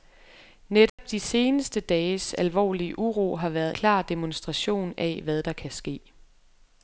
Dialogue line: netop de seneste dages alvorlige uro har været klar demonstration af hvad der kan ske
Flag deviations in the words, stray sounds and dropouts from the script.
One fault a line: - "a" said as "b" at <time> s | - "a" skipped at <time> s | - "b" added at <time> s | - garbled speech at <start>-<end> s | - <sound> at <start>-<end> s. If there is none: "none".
- dropout at 0.9-1.0 s